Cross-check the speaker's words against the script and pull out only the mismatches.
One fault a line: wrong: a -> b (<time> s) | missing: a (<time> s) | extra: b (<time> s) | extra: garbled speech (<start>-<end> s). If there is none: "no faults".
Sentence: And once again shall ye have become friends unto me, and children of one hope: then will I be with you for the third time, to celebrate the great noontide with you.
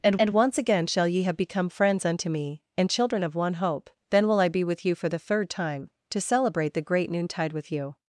extra: and (0.2 s)